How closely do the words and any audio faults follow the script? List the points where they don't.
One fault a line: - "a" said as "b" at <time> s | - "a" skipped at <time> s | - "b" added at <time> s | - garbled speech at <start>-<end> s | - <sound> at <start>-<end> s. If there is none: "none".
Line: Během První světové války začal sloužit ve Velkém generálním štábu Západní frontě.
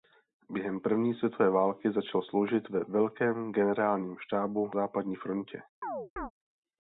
- chirp at 5.8-6.3 s